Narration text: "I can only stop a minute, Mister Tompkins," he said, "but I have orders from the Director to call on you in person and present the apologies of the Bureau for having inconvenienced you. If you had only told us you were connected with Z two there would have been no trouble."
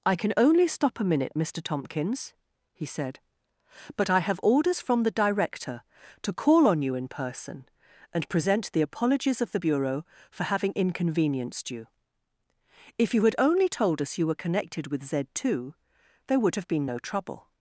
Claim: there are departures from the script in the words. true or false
false